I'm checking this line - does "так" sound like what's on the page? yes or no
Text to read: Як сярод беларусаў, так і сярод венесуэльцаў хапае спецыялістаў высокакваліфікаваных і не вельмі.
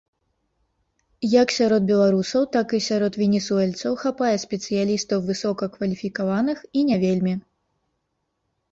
yes